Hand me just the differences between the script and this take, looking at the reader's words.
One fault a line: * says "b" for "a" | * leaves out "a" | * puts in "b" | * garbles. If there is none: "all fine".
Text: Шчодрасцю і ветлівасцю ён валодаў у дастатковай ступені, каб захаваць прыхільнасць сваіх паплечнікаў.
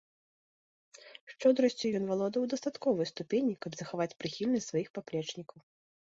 * leaves out "ветлівасцю"